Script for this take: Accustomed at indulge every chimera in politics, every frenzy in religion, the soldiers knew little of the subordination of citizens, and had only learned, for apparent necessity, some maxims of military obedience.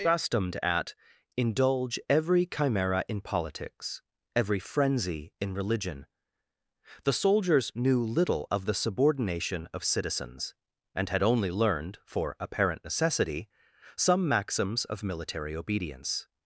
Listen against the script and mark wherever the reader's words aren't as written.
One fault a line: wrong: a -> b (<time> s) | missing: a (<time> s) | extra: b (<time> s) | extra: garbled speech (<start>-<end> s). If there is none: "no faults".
no faults